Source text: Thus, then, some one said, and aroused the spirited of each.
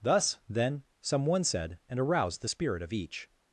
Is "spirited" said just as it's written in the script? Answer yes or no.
no